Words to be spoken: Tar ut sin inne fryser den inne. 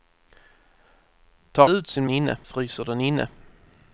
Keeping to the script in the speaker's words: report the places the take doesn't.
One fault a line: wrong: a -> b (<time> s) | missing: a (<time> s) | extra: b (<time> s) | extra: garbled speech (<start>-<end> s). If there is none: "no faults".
no faults